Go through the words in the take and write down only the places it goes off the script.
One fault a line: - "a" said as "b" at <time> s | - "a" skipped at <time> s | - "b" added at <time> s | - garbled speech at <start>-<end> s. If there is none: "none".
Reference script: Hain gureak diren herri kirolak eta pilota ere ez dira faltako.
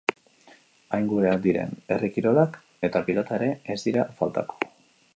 none